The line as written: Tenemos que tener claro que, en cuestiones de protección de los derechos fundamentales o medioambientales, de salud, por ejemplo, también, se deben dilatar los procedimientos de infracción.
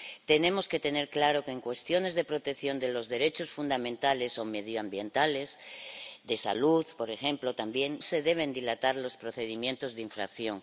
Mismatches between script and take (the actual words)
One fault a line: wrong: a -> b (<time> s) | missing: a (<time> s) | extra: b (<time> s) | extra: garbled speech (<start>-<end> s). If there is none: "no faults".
no faults